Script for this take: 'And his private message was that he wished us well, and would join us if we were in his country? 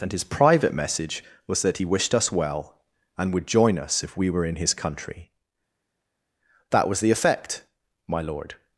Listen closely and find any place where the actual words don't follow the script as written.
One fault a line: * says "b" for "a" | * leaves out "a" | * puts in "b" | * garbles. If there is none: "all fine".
* puts in "That was the effect my lord"